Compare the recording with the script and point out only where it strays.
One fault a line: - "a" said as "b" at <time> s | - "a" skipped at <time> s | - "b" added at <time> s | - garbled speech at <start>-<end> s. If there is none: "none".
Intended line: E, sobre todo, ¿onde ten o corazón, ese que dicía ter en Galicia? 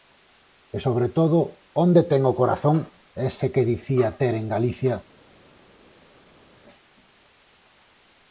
none